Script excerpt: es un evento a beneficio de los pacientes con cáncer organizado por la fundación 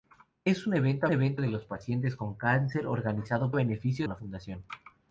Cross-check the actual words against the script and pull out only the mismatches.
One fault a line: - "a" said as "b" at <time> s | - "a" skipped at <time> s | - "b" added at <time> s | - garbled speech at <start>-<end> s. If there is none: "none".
- "beneficio" said as "evento" at 1.1 s
- "por" said as "beneficio" at 3.5 s